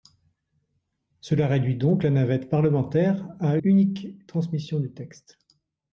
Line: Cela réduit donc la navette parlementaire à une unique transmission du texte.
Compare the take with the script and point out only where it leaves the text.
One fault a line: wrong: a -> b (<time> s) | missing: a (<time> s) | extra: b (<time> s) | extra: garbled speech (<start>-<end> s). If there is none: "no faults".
missing: une (3.6 s)